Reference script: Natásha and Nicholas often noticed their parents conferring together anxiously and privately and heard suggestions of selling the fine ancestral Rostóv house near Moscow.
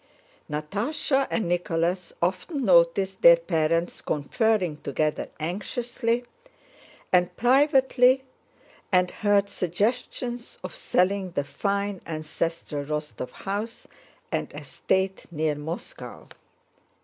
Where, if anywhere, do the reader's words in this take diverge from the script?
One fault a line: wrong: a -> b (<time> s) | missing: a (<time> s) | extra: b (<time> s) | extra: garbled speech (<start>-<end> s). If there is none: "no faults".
extra: and estate (14.3 s)